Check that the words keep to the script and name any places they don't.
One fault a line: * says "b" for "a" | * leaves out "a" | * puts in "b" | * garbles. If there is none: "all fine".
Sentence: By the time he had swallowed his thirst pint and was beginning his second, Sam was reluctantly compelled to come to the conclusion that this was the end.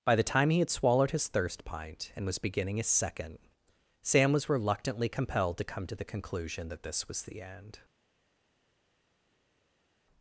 all fine